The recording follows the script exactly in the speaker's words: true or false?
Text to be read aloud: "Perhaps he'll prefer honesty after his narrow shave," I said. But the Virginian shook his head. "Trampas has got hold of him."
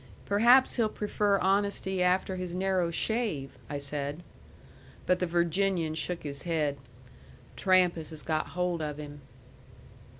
true